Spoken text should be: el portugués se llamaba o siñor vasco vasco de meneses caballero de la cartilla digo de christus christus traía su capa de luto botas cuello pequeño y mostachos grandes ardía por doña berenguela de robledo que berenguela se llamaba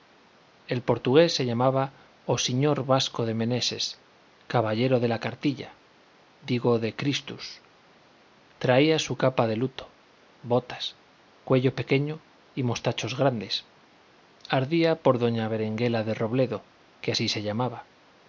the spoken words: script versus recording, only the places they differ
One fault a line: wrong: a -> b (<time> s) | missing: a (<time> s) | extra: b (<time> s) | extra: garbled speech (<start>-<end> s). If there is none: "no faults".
missing: vasco (3.2 s)
missing: christus (7.6 s)
wrong: berenguela -> así (17.1 s)